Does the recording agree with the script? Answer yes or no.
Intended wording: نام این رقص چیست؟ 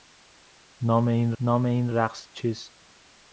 no